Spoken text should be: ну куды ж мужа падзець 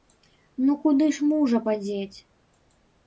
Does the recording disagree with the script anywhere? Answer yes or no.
no